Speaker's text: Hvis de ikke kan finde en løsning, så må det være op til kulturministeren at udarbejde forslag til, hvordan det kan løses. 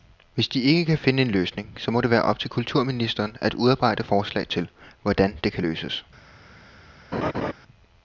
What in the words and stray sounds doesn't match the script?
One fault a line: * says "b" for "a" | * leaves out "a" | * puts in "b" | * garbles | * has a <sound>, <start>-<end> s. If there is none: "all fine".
* has a laugh, 7.1-7.5 s